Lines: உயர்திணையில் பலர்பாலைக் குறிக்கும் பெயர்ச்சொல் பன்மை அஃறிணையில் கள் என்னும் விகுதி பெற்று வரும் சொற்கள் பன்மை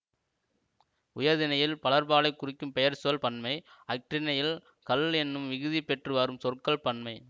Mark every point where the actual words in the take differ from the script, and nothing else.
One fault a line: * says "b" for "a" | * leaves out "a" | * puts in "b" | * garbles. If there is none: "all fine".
all fine